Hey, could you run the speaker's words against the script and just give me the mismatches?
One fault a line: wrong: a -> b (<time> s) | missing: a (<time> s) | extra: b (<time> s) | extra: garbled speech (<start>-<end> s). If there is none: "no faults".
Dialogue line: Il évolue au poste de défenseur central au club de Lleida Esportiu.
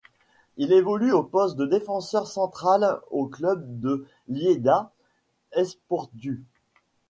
no faults